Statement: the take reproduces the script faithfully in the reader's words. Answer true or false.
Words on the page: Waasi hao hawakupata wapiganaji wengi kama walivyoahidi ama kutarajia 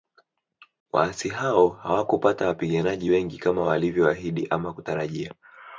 true